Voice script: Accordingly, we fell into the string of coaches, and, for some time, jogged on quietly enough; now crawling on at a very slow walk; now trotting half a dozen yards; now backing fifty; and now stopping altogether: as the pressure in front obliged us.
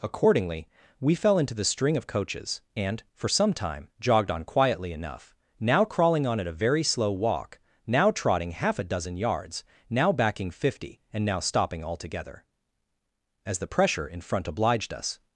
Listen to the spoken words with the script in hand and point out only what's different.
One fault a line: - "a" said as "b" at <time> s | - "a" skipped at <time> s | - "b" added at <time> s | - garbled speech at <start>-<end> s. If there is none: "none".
none